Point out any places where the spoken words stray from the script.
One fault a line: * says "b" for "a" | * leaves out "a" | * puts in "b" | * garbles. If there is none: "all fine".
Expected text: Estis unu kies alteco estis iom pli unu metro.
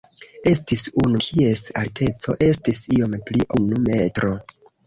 all fine